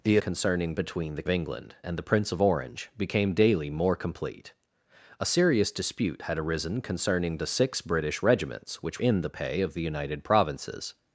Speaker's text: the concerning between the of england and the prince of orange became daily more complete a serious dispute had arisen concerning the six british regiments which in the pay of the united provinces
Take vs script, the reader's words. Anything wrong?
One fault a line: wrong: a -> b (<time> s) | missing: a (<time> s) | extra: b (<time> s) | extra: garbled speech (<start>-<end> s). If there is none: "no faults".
no faults